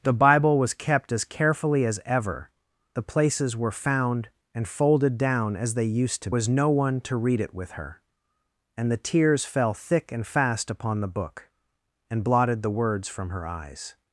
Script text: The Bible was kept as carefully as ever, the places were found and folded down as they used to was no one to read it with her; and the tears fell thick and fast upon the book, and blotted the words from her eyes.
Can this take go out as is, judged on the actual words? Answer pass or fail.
pass